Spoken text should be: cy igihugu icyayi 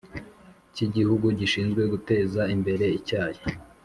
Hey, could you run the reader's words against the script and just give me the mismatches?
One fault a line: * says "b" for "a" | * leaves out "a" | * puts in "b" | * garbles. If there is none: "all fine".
* puts in "gishinzwe guteza imbere"